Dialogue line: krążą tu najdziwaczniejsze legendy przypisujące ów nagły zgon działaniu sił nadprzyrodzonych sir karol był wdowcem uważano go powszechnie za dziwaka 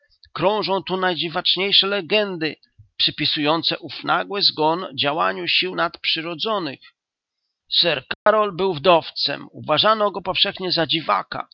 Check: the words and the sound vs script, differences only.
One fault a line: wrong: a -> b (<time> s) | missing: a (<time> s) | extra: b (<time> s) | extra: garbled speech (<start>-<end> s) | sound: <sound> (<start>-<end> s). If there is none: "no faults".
sound: dropout (8.1-8.3 s)